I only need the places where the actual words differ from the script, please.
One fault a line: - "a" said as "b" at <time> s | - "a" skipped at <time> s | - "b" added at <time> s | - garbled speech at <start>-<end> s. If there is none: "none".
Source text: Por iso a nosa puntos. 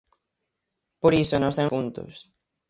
none